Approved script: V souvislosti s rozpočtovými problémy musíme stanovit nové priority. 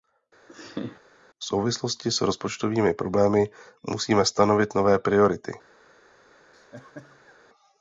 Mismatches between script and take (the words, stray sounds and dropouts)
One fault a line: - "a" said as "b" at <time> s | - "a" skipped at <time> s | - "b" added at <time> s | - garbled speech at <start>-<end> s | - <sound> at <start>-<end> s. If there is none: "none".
- laugh at 0.5-1.0 s
- laugh at 6.5-7.4 s